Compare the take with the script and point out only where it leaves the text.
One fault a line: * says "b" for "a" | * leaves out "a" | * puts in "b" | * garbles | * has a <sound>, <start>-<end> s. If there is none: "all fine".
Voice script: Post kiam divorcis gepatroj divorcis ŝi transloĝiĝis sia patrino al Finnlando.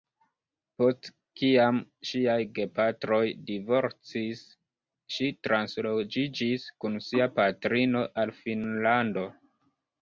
* says "ŝiaj" for "divorcis"
* puts in "kun"